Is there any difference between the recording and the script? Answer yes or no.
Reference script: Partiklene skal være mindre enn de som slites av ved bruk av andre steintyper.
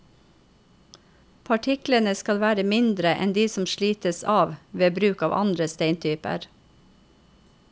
no